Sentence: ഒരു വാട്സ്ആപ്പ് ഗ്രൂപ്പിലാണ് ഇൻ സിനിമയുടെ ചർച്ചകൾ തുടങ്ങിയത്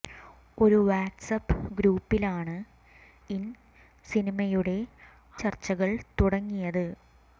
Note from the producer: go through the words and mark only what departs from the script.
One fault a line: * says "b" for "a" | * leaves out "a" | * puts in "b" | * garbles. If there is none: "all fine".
all fine